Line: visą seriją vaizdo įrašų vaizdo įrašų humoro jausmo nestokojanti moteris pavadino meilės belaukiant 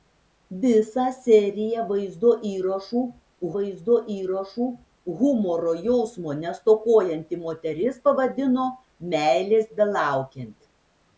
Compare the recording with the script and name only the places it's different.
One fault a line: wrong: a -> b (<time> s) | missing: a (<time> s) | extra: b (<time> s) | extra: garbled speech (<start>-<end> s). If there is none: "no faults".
no faults